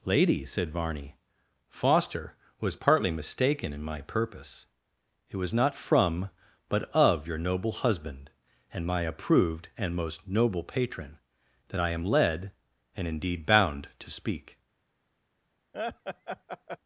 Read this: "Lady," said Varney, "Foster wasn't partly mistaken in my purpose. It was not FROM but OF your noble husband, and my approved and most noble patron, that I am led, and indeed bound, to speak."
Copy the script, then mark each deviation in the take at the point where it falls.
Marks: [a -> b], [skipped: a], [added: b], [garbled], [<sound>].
"Lady," said Varney, "Foster [wasn't -> was] partly mistaken in my purpose. It was not FROM but OF your noble husband, and my approved and most noble patron, that I am led, and indeed bound, to speak." [laugh]